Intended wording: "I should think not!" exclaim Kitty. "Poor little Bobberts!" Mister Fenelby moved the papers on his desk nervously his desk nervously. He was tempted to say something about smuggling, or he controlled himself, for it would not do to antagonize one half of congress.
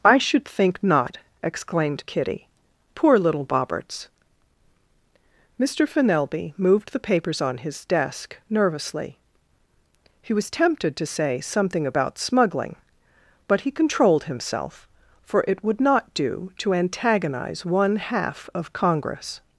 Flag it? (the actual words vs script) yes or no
yes